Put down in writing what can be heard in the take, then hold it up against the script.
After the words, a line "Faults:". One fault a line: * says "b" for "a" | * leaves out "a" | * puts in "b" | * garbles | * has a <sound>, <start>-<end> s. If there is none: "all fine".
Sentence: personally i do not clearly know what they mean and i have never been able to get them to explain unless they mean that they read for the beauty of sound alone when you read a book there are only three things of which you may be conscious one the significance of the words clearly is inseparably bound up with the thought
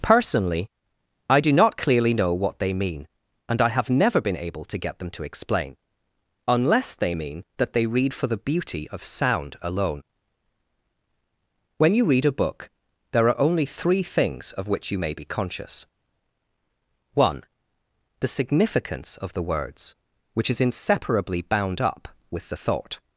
personally i do not clearly know what they mean and i have never been able to get them to explain unless they mean that they read for the beauty of sound alone when you read a book there are only three things of which you may be conscious one the significance of the words which is inseparably bound up with the thought
Faults:
* says "which" for "clearly"